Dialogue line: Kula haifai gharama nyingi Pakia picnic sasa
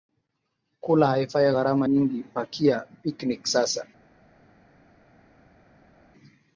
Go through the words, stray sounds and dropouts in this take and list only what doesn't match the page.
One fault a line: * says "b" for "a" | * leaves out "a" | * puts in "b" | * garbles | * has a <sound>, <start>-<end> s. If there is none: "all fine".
all fine